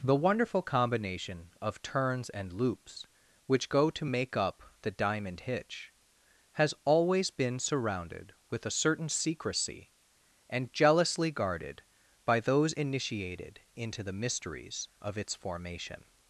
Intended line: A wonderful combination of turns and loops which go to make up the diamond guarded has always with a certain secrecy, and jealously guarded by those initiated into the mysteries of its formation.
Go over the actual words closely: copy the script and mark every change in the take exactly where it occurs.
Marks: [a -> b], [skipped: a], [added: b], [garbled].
[A -> The] wonderful combination of turns and loops which go to make up the diamond [guarded -> hitch] has always [added: been surrounded] with a certain secrecy, and jealously guarded by those initiated into the mysteries of its formation.